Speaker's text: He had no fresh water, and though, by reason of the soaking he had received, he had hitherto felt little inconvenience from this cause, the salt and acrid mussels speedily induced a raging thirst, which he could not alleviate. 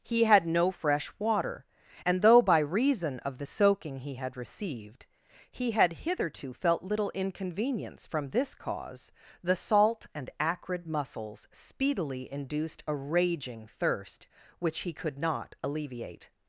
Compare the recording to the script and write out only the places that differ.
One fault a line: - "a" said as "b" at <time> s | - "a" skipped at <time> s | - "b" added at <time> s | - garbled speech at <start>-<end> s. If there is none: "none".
none